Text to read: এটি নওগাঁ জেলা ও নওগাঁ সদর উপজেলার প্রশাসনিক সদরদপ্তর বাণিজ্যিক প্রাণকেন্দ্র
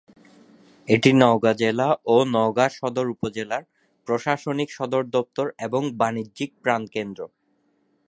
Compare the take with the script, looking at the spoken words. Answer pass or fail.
fail